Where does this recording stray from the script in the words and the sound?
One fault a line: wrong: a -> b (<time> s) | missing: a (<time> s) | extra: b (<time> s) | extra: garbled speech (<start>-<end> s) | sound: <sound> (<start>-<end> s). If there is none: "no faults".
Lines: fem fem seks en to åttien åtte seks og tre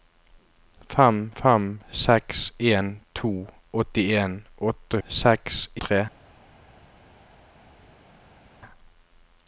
no faults